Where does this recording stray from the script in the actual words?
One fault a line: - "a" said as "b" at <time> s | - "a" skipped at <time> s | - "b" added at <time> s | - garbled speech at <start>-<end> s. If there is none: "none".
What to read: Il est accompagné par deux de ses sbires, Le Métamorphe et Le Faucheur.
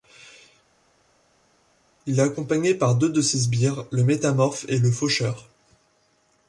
none